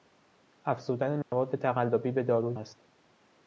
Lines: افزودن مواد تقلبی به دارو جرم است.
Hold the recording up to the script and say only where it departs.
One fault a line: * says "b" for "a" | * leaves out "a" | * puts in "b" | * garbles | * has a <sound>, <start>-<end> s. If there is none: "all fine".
* has a dropout, 1.2-1.3 s
* leaves out "جرم"